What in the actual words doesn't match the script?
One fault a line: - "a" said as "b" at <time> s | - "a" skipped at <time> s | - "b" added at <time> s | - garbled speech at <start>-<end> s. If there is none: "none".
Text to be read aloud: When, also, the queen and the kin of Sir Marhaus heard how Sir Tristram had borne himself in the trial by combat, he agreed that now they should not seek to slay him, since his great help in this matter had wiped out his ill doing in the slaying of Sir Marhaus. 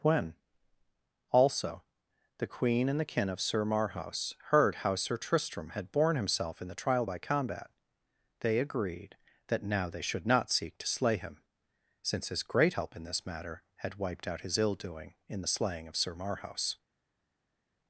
- "he" said as "they" at 8.4 s